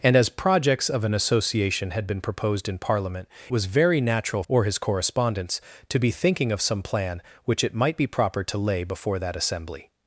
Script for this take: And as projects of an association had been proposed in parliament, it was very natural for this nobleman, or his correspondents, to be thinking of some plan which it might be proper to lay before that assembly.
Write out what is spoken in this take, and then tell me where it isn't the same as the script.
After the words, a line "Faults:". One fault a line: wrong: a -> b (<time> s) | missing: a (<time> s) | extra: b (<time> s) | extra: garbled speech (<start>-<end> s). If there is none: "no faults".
And as projects of an association had been proposed in parliament, was very natural or his correspondents, to be thinking of some plan which it might be proper to lay before that assembly.
Faults:
missing: it (3.3 s)
missing: for this nobleman (4.4 s)